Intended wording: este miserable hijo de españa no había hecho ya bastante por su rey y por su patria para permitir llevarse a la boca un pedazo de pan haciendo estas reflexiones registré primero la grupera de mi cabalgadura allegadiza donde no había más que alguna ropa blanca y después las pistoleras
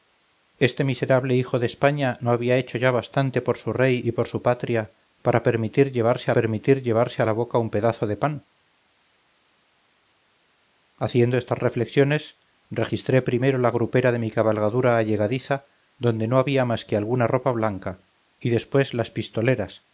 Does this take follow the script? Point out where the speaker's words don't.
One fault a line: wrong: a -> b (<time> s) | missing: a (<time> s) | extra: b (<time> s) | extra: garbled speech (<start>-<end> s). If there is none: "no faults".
extra: permitir llevarse (6.3 s)